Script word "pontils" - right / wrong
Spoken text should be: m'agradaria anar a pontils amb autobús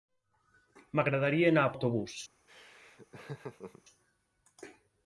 wrong